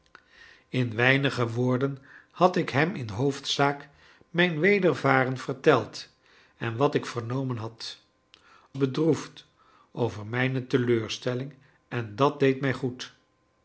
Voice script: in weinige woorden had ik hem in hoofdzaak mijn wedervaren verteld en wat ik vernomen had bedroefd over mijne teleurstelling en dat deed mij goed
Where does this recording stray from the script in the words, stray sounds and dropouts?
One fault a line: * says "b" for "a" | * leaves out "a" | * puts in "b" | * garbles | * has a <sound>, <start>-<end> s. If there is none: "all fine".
all fine